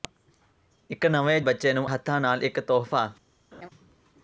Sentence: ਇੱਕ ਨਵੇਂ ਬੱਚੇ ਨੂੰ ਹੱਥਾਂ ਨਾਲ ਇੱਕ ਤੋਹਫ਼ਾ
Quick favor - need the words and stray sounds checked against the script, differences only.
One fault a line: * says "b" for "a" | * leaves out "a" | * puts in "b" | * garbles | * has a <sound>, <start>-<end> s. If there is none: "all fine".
* has a laugh, 3.5-3.7 s